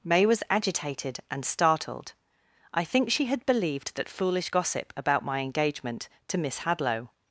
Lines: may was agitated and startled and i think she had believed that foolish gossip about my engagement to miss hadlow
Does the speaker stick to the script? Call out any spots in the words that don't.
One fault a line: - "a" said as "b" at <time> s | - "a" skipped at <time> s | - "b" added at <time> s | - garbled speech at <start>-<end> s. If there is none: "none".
- "and" skipped at 2.1 s